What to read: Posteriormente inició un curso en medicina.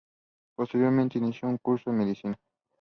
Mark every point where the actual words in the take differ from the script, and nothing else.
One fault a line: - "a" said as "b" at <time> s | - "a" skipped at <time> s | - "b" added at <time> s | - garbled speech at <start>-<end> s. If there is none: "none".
none